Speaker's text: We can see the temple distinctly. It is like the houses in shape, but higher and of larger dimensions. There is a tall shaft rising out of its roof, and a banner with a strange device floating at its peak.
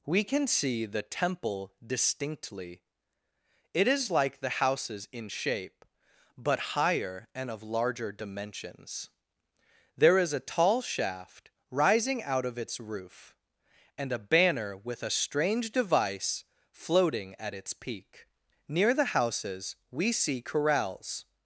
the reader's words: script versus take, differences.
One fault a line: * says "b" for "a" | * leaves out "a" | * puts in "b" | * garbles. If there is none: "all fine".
* puts in "Near the houses we see corrals"